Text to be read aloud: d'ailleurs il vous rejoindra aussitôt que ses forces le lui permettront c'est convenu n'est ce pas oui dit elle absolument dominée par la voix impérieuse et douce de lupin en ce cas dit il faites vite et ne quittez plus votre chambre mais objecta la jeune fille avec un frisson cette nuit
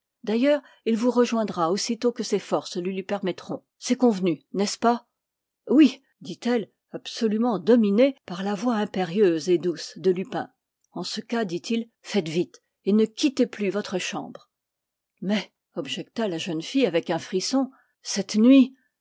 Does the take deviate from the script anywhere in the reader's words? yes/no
no